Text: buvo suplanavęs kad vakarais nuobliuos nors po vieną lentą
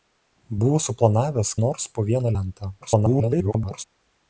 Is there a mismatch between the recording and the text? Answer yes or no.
yes